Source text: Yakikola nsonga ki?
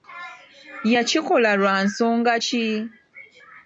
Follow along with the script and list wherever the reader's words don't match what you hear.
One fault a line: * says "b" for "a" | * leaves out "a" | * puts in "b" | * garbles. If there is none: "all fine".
* puts in "lwa"